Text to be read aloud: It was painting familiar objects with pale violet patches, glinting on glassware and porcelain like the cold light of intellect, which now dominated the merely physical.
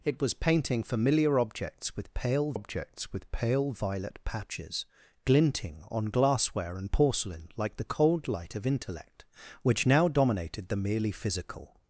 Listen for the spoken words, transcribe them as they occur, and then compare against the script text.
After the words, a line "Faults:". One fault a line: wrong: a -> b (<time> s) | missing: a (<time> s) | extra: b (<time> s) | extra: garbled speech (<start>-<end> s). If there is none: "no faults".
It was painting familiar objects with pale objects with pale violet patches, glinting on glassware and porcelain like the cold light of intellect, which now dominated the merely physical.
Faults:
extra: objects with pale (2.5 s)